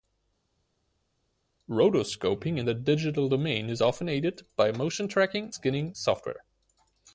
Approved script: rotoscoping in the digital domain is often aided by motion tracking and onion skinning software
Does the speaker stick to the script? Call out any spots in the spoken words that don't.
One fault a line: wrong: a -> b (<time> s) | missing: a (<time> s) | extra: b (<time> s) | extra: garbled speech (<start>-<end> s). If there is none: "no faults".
missing: and onion (5.5 s)